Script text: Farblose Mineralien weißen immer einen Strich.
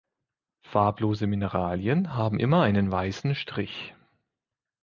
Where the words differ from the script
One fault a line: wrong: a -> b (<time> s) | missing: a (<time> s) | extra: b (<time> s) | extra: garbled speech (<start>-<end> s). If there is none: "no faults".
wrong: weißen -> haben (2.1 s)
extra: weißen (2.9 s)